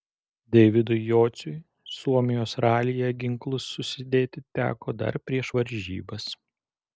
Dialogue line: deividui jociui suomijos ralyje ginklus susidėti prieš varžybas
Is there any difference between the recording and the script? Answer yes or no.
yes